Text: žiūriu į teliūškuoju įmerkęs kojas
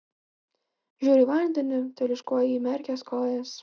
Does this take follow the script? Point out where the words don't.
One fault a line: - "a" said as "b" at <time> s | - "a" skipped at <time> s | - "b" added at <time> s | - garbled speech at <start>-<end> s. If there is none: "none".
- "vandenį" added at 1.3 s